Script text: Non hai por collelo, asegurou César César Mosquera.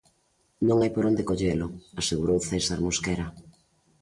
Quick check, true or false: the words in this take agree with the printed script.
false